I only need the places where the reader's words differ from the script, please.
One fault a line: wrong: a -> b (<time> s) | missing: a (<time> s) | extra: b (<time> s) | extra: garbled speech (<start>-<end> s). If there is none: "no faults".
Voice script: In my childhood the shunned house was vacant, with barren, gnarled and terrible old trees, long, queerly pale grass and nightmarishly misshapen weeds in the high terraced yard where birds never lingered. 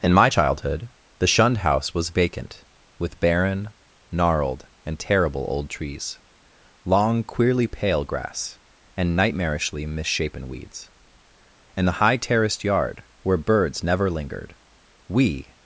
extra: We (15.1 s)